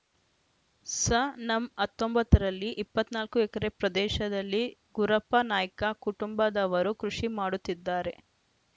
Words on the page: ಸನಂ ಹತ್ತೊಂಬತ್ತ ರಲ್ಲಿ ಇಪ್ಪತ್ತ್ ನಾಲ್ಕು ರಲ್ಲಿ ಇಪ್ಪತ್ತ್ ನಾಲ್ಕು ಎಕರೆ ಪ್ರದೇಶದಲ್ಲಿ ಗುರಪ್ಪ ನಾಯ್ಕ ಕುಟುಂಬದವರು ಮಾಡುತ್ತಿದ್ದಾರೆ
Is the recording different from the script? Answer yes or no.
yes